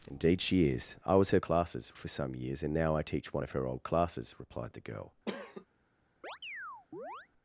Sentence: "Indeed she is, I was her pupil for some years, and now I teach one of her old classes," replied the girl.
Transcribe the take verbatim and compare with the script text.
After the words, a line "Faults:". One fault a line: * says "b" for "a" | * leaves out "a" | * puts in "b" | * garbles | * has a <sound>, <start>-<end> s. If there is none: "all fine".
"Indeed she is, I was her classes for some years, and now I teach one of her old classes," replied the girl.
Faults:
* says "classes" for "pupil"
* has a cough, 5.3-5.7 s
* has a chirp, 6.2-7.3 s